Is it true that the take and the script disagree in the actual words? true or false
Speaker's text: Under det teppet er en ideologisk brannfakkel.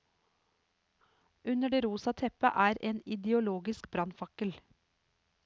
true